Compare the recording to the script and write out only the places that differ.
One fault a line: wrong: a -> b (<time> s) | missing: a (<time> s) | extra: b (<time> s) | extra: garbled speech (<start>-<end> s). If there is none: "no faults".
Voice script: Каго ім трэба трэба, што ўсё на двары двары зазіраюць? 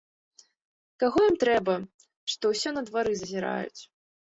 missing: трэба (1.7 s)
missing: двары (3.1 s)